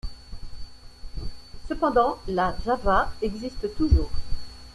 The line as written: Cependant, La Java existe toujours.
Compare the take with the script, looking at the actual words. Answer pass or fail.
pass